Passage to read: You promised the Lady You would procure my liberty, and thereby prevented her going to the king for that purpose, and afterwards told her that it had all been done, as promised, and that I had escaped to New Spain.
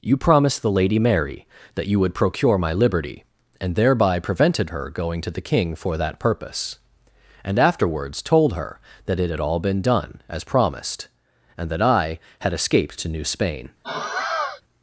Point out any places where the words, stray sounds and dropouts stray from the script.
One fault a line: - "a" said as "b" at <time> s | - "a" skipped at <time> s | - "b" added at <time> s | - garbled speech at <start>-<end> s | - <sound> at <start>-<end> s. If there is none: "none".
- "Mary that" added at 1.0 s
- sigh at 13.8-14.6 s